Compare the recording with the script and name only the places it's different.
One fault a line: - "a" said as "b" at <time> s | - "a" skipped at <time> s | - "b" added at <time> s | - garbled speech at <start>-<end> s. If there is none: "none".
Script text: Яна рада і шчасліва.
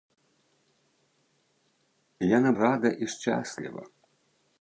none